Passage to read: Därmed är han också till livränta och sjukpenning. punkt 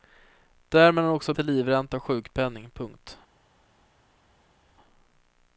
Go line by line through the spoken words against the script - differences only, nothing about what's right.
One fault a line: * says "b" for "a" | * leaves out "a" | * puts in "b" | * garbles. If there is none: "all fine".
all fine